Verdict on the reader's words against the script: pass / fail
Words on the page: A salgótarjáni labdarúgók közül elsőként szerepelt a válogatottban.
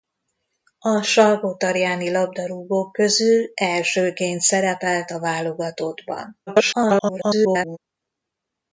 fail